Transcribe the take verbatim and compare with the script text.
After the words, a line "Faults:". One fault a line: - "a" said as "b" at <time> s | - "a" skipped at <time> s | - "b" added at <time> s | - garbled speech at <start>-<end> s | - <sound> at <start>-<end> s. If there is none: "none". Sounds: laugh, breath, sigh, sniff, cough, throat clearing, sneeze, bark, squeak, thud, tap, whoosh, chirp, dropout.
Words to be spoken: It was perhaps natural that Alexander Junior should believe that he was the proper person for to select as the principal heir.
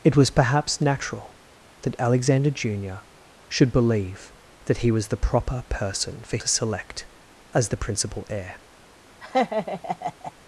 It was perhaps natural that Alexander Junior should believe that he was the proper person for to select as the principal heir.
Faults:
- laugh at 9.2-10.3 s